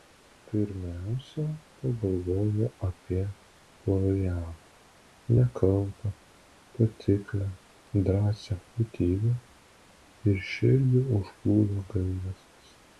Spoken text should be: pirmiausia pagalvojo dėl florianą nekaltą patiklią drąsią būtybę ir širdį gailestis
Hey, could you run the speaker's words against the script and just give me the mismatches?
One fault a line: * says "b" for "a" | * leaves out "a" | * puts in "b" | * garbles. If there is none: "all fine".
* says "apie" for "dėl"
* puts in "užplūdo"